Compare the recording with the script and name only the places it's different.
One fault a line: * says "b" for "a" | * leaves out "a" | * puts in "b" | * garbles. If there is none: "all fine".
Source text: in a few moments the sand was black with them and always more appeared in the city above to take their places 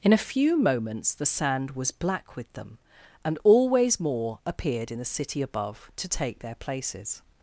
all fine